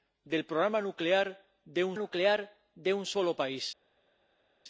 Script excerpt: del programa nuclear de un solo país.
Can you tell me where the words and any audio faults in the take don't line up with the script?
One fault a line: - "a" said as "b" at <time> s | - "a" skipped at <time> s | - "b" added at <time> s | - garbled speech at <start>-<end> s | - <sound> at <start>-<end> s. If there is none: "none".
- "nuclear de un" added at 2.0 s